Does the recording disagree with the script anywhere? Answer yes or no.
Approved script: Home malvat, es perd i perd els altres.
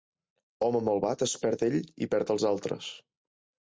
yes